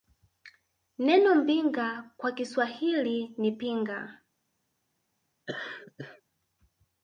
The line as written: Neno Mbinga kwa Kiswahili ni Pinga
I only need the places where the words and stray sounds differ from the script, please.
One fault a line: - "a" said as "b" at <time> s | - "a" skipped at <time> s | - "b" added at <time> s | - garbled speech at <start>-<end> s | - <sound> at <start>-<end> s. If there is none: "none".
- laugh at 5.5-6.2 s